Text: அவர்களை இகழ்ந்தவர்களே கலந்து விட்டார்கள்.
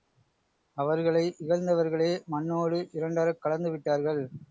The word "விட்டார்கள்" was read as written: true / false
true